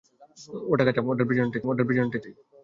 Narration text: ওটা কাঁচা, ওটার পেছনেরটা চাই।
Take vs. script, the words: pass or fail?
fail